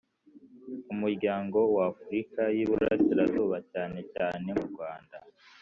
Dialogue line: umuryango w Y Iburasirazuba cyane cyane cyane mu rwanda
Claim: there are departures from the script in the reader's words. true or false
true